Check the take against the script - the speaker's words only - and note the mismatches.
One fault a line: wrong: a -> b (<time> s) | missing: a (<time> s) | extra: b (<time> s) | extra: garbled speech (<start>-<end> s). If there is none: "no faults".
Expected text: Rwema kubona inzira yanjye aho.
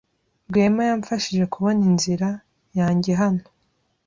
extra: yamfashije (0.9 s)
wrong: aho -> hano (3.2 s)